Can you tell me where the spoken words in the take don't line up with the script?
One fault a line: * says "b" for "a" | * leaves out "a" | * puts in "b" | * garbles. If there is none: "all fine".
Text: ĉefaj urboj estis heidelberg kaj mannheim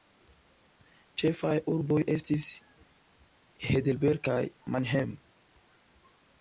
all fine